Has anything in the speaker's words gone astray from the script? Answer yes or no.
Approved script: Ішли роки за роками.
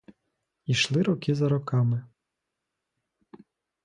no